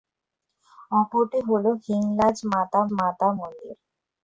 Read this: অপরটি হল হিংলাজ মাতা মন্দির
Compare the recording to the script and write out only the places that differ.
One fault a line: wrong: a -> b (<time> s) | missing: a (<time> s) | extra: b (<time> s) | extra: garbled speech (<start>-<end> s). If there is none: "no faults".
extra: মাতা (3.0 s)